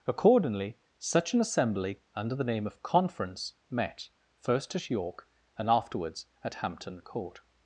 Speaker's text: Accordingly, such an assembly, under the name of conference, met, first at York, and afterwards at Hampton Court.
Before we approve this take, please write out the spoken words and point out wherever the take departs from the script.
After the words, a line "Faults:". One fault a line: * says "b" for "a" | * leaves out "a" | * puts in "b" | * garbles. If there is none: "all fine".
Accordingly, such an assembly, under the name of conference, met, first at York, and afterwards at Hampton Court.
Faults:
all fine